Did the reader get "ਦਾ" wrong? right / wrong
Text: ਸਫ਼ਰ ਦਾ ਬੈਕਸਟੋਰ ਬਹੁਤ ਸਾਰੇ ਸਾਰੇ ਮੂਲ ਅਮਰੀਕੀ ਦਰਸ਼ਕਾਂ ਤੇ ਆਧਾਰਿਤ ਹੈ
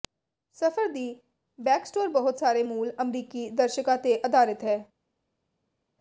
wrong